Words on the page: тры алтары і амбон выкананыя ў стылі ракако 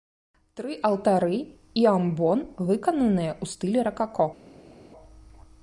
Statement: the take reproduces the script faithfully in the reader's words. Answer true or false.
true